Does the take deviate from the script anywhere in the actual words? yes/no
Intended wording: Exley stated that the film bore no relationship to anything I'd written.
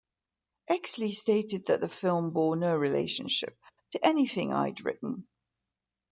no